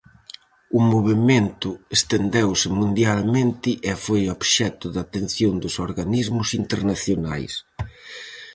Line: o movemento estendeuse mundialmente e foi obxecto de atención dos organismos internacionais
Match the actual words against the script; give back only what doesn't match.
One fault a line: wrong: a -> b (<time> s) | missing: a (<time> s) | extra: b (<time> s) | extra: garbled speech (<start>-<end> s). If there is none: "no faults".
no faults